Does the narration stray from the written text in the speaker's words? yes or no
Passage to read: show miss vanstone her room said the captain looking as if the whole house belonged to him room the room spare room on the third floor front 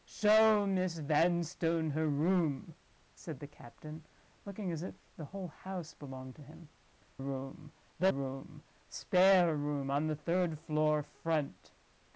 no